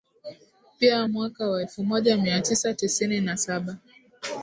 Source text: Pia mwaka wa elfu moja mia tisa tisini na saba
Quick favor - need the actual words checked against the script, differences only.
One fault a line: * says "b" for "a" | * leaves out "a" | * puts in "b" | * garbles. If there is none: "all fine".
all fine